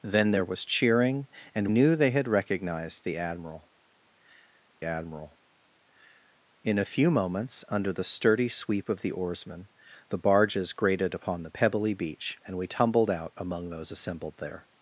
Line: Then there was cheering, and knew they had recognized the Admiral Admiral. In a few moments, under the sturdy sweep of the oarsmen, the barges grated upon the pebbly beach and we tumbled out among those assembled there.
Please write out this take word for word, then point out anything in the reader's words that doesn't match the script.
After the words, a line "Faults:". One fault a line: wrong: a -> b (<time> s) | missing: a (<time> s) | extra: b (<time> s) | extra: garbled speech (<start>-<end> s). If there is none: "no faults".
Then there was cheering, and knew they had recognized the Admiral Admiral. In a few moments, under the sturdy sweep of the oarsmen, the barges grated upon the pebbly beach and we tumbled out among those assembled there.
Faults:
no faults